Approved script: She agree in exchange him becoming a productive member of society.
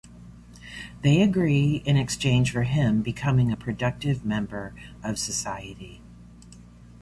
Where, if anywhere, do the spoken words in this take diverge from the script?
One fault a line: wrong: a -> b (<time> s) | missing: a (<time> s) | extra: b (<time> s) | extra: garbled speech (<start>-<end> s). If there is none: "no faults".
wrong: She -> They (1.0 s)
extra: for (2.5 s)